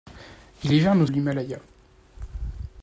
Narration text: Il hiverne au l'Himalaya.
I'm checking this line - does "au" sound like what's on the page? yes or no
yes